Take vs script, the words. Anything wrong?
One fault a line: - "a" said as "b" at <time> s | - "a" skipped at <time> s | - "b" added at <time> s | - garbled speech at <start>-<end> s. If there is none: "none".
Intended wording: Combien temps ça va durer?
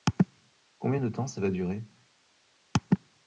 - "de" added at 1.0 s